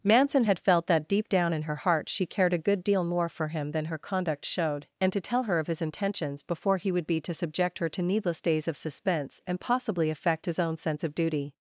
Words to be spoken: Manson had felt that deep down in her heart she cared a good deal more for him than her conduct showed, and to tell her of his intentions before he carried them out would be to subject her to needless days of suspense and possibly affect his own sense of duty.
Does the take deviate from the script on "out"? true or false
true